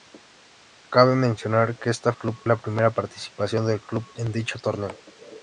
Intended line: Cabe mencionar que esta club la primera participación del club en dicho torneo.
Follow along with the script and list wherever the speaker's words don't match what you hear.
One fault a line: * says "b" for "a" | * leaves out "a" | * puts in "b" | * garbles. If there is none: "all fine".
all fine